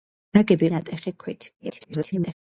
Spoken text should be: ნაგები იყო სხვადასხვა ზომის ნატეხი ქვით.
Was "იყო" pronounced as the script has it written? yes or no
no